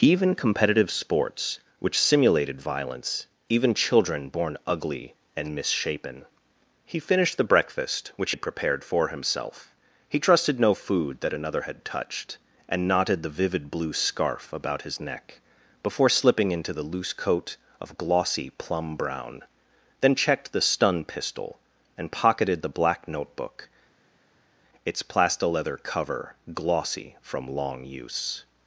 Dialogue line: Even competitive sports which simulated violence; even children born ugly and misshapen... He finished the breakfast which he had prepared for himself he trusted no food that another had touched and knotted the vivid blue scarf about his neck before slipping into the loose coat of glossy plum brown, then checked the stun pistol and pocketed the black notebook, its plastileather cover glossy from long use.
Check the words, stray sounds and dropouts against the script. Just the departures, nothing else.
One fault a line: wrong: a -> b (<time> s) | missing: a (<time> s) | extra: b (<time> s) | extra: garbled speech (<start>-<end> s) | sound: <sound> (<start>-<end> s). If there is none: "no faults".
missing: he (8.3 s)